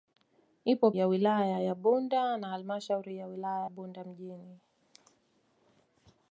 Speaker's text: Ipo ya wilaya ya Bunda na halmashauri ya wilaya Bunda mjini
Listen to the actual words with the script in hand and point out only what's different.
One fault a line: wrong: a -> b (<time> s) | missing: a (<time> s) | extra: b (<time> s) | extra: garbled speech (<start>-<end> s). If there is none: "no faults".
no faults